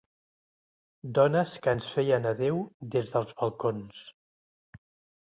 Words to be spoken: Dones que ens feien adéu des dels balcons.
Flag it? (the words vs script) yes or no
no